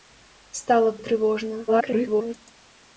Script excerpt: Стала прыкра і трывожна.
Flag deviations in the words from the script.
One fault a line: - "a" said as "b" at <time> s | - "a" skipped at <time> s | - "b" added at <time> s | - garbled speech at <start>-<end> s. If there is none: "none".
- "прыкра" skipped at 0.9 s
- garbled speech at 1.7-2.3 s